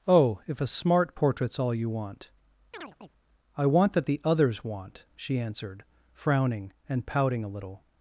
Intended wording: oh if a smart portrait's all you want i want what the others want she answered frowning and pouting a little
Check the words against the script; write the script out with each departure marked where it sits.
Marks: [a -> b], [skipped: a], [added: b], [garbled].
oh if a smart portrait's all you want i want [what -> that] the others want she answered frowning and pouting a little